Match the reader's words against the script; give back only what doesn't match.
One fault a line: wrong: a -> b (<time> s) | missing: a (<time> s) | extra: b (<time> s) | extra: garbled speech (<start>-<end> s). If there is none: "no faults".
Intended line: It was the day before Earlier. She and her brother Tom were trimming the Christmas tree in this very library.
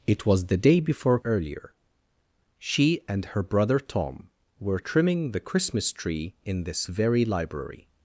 no faults